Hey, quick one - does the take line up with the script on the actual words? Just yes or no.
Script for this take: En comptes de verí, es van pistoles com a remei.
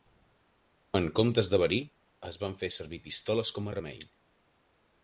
no